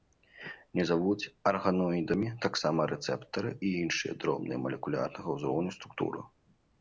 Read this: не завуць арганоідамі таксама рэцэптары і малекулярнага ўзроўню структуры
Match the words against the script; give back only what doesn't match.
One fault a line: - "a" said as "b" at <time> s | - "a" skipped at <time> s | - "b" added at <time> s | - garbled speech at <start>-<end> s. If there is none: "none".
- "іншыя дробныя" added at 3.8 s